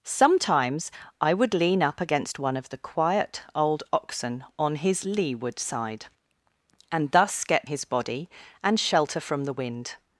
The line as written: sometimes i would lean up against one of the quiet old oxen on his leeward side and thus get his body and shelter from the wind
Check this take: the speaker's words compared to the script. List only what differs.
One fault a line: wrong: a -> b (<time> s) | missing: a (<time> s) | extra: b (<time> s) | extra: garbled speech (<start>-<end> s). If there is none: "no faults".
no faults